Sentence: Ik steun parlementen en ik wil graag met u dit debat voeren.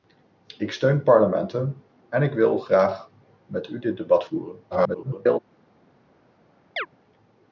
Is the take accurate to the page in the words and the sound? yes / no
no